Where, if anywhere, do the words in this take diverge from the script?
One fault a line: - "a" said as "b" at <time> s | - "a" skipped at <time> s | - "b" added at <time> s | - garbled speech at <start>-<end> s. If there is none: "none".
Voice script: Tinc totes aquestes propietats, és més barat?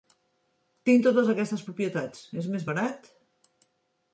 none